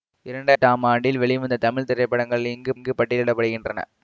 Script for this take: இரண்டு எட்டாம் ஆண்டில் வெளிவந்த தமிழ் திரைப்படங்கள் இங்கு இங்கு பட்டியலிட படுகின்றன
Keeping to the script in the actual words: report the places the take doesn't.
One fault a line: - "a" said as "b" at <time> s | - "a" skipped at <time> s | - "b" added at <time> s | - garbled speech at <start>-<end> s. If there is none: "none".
none